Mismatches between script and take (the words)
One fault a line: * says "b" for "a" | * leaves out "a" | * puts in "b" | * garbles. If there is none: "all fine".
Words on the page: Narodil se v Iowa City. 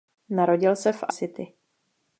* leaves out "Iowa"